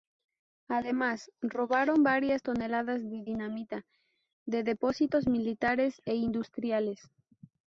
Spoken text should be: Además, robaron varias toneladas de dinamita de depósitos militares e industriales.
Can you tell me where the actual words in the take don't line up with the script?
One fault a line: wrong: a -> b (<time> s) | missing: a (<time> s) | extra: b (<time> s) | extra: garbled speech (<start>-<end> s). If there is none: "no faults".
no faults